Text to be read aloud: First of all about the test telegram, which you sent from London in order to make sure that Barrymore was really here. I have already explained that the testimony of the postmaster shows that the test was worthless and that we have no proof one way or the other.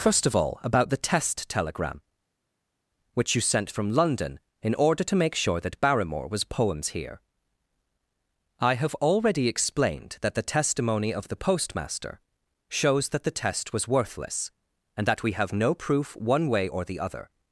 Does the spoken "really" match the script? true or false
false